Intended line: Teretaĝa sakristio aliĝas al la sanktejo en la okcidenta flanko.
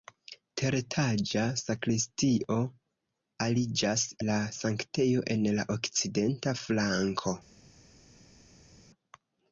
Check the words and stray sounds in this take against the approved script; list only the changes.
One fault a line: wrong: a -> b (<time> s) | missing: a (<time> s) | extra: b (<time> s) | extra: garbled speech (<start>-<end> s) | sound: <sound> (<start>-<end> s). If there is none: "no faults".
missing: al (4.0 s)